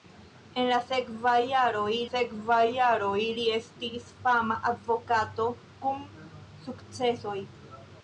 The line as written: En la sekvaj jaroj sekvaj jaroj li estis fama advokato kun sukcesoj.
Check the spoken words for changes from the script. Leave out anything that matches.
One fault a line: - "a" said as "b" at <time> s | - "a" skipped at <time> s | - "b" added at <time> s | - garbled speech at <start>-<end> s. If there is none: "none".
none